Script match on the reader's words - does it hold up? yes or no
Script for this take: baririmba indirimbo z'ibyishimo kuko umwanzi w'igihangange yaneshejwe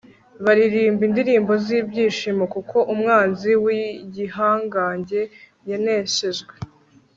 yes